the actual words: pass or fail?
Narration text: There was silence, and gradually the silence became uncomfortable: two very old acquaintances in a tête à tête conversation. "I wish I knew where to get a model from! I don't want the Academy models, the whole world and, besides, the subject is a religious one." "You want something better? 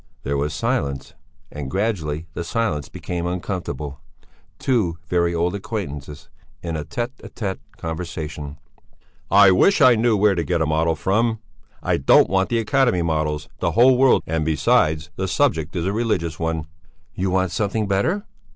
pass